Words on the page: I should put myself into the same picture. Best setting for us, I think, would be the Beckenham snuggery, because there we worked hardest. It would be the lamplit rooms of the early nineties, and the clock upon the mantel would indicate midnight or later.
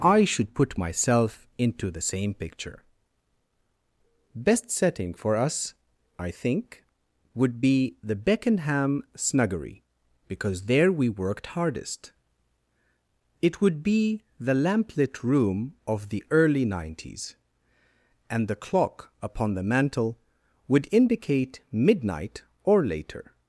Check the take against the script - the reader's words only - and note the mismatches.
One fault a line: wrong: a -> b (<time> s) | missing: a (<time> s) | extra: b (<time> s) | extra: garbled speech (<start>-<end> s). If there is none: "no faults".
wrong: rooms -> room (15.2 s)